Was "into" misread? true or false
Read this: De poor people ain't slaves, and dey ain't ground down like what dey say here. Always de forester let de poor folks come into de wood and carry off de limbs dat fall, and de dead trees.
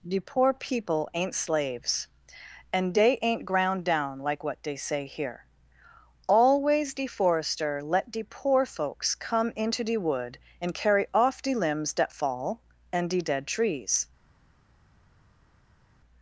false